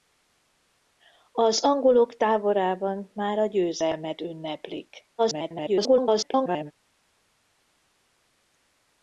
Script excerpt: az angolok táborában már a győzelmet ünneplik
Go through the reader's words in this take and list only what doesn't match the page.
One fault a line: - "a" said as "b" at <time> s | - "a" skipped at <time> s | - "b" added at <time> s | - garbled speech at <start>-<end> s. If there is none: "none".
- garbled speech at 5.2-6.7 s